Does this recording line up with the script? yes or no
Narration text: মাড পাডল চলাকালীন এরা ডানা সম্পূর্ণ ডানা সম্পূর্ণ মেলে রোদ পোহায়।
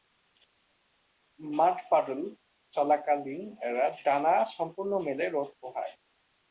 no